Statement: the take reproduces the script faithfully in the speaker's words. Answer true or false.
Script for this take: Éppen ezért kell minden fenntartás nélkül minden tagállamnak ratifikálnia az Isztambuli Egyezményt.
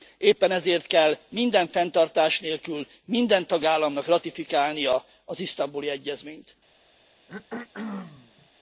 true